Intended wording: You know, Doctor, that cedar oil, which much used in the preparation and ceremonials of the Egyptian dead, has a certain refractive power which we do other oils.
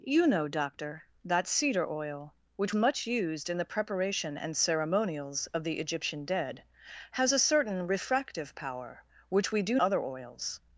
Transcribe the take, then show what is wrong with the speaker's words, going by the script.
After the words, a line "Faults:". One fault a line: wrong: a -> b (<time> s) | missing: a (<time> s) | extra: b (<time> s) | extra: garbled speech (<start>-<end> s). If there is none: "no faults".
You know, Doctor, that cedar oil, which much used in the preparation and ceremonials of the Egyptian dead, has a certain refractive power which we do other oils.
Faults:
no faults